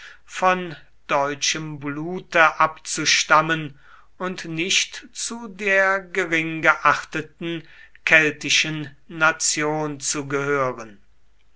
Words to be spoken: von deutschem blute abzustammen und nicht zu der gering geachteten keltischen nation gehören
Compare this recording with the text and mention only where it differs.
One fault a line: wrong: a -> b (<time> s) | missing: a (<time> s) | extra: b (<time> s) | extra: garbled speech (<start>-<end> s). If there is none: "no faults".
extra: zu (10.0 s)